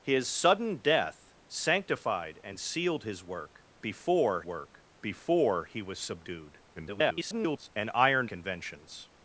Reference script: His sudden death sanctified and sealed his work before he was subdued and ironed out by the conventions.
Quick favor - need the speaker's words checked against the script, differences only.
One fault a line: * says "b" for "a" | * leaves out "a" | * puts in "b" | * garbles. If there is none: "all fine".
* puts in "work before"
* garbles
* leaves out "out by the"